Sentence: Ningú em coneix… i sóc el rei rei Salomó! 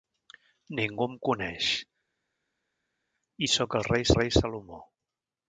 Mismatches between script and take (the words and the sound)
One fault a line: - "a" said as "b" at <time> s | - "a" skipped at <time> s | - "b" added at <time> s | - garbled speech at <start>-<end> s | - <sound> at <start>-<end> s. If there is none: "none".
none